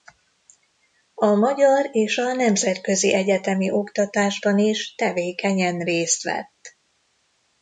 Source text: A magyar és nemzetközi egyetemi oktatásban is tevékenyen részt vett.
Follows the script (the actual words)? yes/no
no